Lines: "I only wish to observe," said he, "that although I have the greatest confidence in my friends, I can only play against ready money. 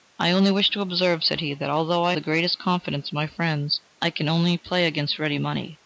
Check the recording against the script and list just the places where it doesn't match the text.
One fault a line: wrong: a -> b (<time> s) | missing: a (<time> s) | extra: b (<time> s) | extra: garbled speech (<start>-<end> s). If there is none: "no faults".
missing: have (2.1 s)